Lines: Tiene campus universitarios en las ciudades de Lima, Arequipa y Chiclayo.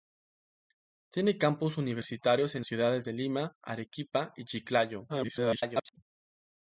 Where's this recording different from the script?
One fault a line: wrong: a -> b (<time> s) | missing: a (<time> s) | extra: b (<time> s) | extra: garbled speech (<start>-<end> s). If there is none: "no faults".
missing: las (2.6 s)
extra: garbled speech (5.1-6.0 s)